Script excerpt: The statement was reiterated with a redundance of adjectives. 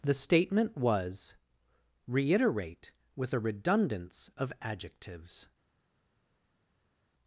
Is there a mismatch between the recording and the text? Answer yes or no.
yes